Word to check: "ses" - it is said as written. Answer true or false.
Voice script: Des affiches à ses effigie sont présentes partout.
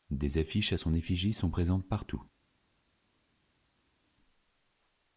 false